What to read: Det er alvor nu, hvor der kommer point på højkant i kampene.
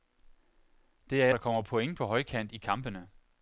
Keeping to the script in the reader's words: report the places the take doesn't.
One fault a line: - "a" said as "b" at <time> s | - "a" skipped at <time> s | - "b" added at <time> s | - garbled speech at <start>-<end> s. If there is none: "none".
- "alvor nu hvor" skipped at 1.3 s